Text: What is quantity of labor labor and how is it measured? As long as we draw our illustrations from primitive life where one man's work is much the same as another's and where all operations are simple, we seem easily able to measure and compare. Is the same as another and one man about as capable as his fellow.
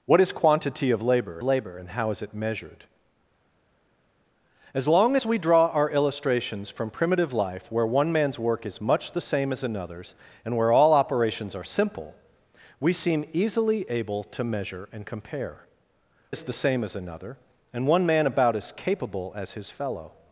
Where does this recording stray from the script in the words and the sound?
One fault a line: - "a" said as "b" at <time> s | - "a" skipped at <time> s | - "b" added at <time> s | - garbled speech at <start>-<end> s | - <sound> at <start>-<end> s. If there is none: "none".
none